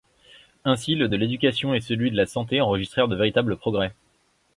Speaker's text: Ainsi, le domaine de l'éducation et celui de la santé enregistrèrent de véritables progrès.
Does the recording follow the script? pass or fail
fail